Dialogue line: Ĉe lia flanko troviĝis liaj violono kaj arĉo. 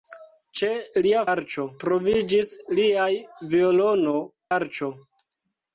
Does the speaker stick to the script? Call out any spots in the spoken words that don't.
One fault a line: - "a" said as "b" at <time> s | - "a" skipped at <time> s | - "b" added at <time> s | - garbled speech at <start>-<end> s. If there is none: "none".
- "flanko" said as "arĉo" at 1.3 s
- "kaj" skipped at 4.2 s